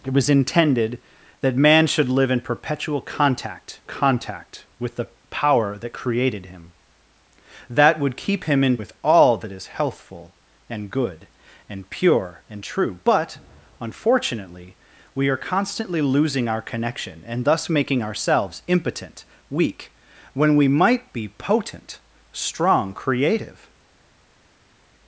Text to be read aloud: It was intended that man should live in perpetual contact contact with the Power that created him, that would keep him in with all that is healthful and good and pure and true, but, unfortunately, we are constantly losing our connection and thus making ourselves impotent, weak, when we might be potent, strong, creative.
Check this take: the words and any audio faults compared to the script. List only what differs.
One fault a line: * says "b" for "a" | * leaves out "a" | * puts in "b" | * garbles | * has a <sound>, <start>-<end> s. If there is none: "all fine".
all fine